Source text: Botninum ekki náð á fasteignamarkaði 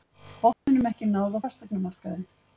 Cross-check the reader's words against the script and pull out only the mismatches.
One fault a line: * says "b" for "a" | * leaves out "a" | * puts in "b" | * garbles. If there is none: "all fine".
all fine